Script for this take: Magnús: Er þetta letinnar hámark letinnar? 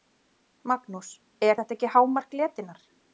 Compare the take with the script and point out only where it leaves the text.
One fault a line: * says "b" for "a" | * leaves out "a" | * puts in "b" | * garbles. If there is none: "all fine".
* says "ekki" for "letinnar"